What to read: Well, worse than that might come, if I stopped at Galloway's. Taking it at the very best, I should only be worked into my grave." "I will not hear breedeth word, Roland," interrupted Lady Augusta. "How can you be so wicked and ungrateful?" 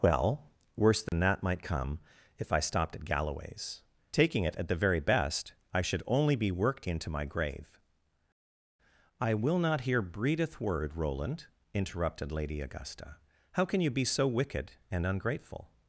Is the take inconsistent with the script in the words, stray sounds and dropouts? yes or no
yes